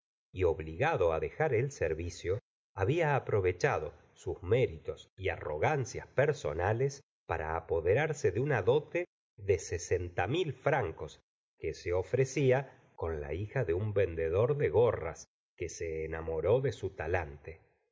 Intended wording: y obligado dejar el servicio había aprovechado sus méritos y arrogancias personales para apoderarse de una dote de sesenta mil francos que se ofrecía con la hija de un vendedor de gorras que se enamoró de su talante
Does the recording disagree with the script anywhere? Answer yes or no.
no